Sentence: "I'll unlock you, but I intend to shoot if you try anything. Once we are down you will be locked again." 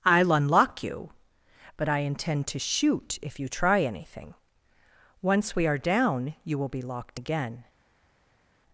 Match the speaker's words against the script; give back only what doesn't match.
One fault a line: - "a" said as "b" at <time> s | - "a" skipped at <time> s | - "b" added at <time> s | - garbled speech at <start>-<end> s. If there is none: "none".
none